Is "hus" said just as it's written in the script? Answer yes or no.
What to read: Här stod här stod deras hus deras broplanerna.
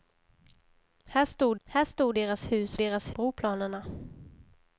yes